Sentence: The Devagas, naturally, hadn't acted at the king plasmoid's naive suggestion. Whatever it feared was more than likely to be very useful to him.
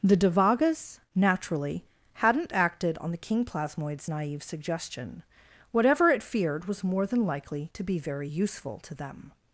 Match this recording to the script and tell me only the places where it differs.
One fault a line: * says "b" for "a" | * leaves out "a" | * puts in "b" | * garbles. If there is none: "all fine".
* says "on" for "at"
* says "them" for "him"